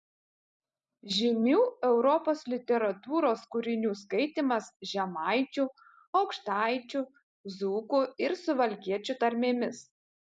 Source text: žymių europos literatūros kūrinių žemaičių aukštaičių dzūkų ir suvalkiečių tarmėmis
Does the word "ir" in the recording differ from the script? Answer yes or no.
no